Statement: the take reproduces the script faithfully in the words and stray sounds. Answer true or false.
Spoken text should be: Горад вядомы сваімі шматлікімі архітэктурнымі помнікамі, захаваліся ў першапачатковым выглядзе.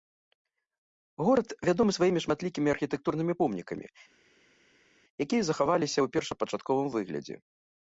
false